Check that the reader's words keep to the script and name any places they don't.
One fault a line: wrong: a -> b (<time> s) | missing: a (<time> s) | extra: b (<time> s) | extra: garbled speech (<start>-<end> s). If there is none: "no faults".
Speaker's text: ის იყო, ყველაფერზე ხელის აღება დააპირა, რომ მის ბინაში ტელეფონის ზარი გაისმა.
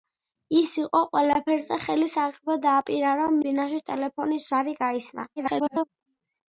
missing: მის (3.4 s)
extra: garbled speech (5.4-5.9 s)